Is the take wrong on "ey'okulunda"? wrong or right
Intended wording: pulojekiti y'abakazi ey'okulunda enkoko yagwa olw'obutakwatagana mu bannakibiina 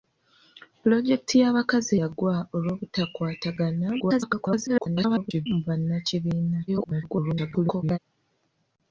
wrong